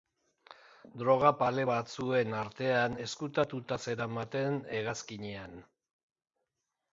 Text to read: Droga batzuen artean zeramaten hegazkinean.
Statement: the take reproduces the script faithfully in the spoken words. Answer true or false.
false